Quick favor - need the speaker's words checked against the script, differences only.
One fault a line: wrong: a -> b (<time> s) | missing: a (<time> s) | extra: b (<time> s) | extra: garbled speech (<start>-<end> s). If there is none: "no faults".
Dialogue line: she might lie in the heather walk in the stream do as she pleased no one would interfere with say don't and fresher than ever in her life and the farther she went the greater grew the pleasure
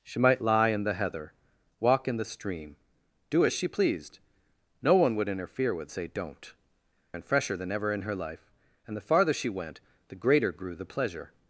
no faults